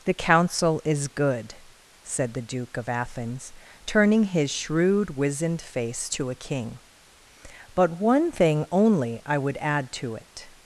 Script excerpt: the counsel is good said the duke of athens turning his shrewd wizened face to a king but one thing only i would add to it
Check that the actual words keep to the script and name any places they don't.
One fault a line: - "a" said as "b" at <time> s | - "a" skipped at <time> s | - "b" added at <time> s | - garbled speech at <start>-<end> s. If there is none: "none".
none